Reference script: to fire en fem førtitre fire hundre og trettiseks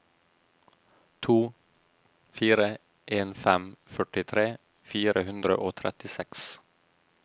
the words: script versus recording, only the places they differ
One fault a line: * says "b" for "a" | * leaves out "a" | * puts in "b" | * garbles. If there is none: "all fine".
all fine